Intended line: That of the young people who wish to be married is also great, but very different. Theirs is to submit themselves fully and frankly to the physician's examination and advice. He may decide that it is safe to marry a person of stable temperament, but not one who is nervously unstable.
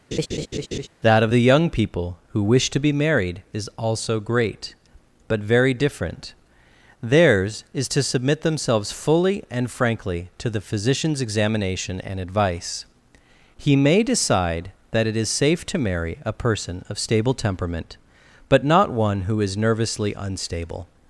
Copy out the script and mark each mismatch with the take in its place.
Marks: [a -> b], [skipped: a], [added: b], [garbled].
That of the young people who wish to be married is also great, but very different. Theirs is to submit themselves fully and frankly to the physician's examination and advice. He may decide that it is safe to marry a person of stable temperament, but not one who is nervously unstable.